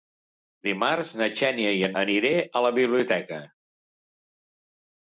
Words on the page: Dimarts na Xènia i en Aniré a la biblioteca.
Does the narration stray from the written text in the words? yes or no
no